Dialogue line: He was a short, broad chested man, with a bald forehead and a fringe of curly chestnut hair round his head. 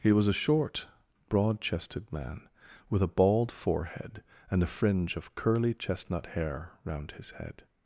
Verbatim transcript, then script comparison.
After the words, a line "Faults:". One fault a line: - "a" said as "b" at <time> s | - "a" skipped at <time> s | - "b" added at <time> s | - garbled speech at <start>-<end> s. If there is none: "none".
He was a short, broad chested man, with a bald forehead and a fringe of curly chestnut hair round his head.
Faults:
none